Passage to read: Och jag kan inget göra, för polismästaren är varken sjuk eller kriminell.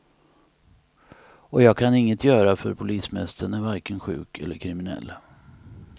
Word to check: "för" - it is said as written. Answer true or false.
true